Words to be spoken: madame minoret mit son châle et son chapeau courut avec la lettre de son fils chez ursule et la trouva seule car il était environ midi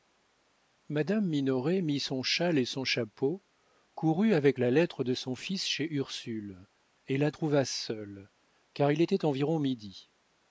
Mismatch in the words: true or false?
false